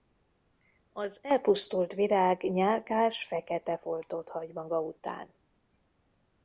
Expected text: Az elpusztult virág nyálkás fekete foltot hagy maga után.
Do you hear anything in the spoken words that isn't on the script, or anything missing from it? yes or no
no